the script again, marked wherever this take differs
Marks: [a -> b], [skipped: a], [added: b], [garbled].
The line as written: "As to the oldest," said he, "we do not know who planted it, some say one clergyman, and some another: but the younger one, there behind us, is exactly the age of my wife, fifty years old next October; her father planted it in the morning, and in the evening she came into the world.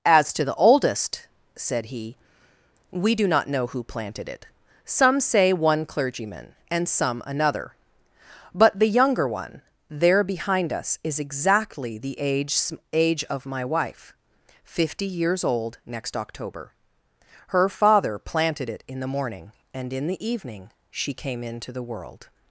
"As to the oldest," said he, "we do not know who planted it, some say one clergyman, and some another: but the younger one, there behind us, is exactly the age [added: age] of my wife, fifty years old next October; her father planted it in the morning, and in the evening she came into the world.